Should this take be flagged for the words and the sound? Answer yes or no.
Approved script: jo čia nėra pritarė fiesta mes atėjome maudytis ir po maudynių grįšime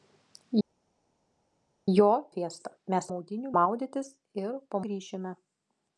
yes